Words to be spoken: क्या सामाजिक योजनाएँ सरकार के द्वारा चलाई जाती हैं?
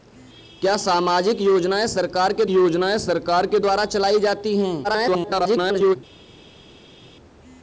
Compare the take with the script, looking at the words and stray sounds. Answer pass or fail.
fail